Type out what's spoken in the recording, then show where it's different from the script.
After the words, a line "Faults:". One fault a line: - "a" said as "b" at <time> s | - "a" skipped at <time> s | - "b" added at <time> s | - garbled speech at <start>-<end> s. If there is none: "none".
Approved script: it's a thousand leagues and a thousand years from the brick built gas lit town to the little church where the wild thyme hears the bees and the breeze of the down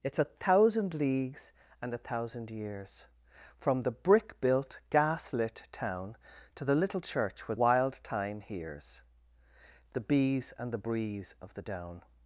it's a thousand leagues and a thousand years from the brick built gas lit town to the little church where wild thyme hears the bees and the breeze of the down
Faults:
- "the" skipped at 7.6 s